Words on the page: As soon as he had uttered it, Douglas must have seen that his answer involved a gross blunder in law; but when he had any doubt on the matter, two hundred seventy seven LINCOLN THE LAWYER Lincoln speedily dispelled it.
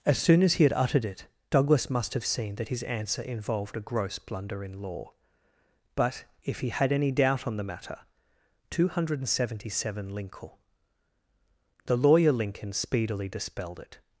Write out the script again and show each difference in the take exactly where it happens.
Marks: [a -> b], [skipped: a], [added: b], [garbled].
As soon as he had uttered it, Douglas must have seen that his answer involved a gross blunder in law; but [when -> if] he had any doubt on the matter, two hundred seventy seven LINCOLN THE LAWYER Lincoln speedily dispelled it.